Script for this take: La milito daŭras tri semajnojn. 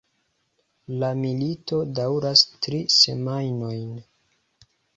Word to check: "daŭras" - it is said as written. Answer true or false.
true